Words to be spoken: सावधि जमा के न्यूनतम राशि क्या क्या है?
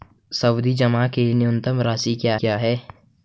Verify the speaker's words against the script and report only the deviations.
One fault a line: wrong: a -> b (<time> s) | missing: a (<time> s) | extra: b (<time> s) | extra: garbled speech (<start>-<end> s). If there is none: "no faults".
no faults